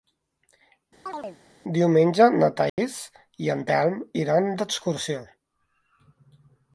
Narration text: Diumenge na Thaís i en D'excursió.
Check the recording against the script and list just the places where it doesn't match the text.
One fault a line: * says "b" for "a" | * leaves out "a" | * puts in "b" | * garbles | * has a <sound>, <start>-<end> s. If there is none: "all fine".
* has a chirp, 1.1-1.4 s
* has a dropout, 2.7-2.8 s
* puts in "Telm iran"